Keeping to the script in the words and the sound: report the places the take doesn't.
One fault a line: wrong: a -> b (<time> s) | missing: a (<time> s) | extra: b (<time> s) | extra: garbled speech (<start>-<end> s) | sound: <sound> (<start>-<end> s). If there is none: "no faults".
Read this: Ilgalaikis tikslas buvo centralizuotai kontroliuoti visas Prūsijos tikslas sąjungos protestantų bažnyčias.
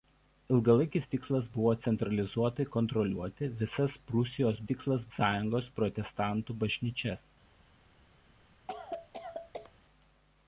sound: cough (8.7-9.7 s)